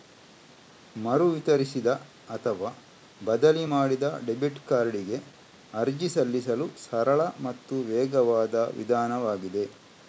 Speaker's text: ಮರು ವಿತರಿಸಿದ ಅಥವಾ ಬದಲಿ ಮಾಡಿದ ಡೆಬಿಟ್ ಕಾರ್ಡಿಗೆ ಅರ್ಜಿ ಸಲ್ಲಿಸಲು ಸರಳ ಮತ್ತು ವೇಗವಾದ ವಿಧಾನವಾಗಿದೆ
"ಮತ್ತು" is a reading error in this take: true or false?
false